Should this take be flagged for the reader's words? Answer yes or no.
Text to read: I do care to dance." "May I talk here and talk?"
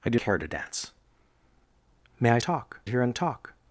no